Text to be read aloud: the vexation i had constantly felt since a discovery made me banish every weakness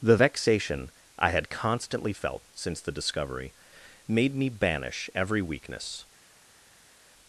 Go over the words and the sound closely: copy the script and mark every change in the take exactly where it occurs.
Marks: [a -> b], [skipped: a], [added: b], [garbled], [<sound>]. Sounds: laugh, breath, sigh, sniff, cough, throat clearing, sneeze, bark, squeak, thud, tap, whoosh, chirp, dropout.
the vexation i had constantly felt since [a -> the] discovery made me banish every weakness